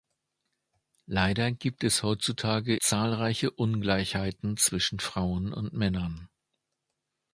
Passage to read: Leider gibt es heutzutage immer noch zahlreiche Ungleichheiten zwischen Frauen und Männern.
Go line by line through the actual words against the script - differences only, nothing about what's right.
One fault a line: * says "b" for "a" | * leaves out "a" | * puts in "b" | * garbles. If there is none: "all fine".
* leaves out "immer noch"